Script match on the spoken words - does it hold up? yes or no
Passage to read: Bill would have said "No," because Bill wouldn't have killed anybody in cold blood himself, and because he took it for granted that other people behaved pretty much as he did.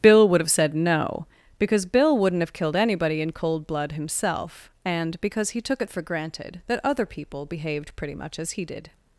yes